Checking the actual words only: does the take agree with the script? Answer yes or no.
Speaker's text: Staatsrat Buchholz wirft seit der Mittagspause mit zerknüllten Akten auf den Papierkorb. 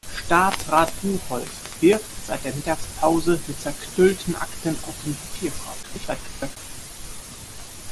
no